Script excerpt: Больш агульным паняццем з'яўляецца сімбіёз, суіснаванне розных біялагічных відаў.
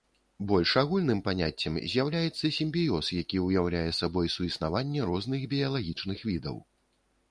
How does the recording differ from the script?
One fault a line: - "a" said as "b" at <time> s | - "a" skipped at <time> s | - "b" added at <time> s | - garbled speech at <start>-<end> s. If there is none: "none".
- "які ўяўляе сабой" added at 3.2 s